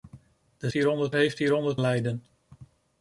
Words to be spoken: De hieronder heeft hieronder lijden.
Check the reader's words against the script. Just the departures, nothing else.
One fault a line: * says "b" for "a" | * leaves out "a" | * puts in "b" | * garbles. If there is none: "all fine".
all fine